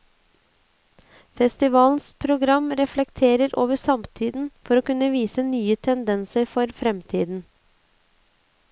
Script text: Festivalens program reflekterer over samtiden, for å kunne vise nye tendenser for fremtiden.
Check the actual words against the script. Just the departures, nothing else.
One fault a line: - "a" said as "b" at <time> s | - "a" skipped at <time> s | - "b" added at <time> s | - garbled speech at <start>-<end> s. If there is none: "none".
none